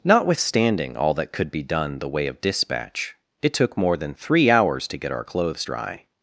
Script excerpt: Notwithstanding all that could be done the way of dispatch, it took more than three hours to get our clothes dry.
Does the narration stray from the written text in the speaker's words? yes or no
no